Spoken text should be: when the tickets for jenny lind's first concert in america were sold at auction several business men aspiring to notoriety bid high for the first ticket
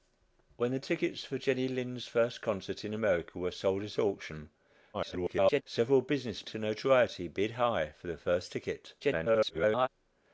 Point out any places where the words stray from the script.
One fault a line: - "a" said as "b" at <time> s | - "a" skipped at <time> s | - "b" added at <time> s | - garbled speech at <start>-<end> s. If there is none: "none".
- garbled speech at 4.9-5.6 s
- "men aspiring" skipped at 6.5 s
- garbled speech at 9.0-9.9 s